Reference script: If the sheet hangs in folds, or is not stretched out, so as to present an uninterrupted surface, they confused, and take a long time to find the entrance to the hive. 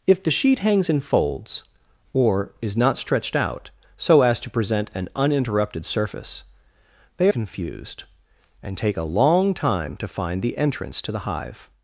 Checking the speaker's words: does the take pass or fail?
pass